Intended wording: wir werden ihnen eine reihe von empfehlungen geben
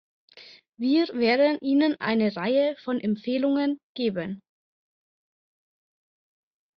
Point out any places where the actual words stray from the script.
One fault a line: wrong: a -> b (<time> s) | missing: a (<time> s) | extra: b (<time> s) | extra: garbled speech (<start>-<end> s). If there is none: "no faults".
no faults